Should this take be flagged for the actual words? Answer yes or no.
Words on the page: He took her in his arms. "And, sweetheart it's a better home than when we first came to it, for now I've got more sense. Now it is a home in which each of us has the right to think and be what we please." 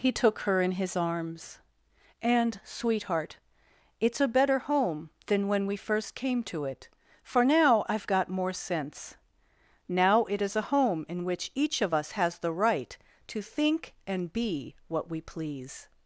no